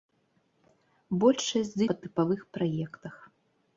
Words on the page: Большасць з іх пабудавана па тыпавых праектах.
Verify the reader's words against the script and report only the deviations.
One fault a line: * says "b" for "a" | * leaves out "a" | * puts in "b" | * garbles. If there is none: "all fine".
* leaves out "іх пабудавана"